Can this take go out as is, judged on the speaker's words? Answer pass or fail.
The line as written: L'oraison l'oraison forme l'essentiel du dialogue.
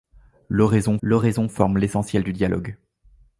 pass